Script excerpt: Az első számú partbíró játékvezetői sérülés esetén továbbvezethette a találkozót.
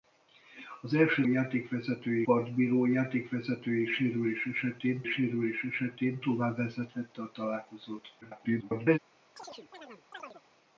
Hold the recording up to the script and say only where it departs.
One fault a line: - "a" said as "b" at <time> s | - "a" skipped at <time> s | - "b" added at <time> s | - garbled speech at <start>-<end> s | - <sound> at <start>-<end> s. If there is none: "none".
- "számú" said as "játékvezetői" at 1.2 s
- "sérülés esetén" added at 5.0 s
- garbled speech at 8.2-9.0 s
- chirp at 9.4-10.4 s